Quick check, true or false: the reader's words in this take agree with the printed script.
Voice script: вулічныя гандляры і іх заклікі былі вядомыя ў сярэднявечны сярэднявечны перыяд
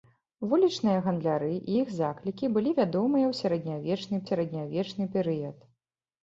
true